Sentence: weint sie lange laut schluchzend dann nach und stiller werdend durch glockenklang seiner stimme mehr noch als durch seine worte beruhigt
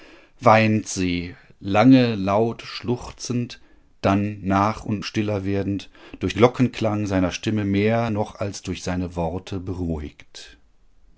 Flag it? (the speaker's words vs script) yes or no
no